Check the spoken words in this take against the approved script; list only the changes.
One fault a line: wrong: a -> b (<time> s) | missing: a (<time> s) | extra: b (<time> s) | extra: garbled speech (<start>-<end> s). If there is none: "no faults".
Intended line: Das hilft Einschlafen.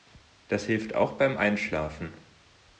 extra: auch beim (0.9 s)